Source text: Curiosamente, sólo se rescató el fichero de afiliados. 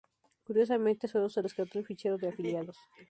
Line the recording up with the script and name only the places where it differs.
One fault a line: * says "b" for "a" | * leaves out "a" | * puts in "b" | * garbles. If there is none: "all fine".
all fine